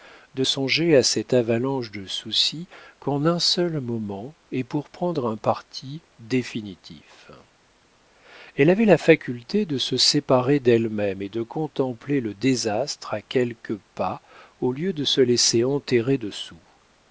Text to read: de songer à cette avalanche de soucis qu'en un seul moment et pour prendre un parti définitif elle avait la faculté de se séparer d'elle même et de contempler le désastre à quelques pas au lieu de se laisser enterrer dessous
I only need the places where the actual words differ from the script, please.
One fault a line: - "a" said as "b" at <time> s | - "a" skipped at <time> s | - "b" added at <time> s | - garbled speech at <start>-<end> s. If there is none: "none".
none